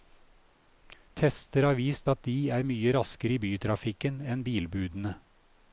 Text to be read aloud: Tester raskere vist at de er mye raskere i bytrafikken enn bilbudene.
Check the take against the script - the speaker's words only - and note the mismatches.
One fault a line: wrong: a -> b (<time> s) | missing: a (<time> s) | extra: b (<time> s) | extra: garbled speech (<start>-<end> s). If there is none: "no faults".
wrong: raskere -> har (1.7 s)